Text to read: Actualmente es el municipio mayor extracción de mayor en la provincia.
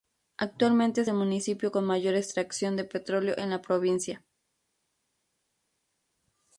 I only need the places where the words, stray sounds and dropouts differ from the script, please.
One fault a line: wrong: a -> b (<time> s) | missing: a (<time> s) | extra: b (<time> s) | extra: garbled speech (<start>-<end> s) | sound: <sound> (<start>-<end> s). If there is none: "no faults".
extra: con (1.7 s)
wrong: mayor -> petróleo (2.8 s)